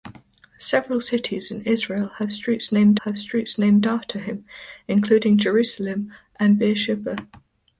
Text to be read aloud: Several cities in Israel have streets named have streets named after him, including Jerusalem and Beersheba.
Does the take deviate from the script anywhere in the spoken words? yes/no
no